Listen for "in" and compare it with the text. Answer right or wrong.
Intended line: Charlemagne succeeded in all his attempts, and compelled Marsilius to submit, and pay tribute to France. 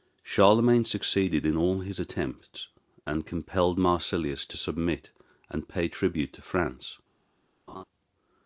right